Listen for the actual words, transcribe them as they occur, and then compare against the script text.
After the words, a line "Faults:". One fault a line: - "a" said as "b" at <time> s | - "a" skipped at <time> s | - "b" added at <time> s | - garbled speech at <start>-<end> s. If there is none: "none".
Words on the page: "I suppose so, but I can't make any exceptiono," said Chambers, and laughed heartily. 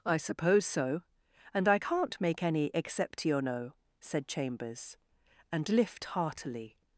"I suppose so, and I can't make any exceptiono," said Chambers, and lift heartily.
Faults:
- "but" said as "and" at 1.5 s
- "laughed" said as "lift" at 5.7 s